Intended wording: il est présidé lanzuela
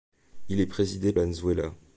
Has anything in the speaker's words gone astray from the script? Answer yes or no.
no